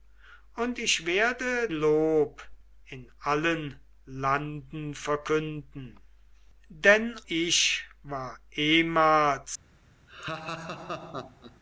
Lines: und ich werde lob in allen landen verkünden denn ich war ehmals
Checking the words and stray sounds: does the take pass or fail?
fail